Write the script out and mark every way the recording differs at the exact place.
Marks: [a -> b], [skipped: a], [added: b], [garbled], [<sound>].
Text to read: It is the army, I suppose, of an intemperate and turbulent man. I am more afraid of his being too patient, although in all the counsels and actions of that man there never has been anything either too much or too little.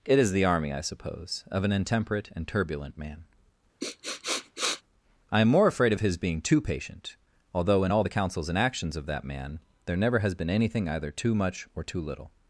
It is the army, I suppose, of an intemperate and turbulent man. [sniff] I am more afraid of his being too patient, although in all the counsels and actions of that man there never has been anything either too much or too little.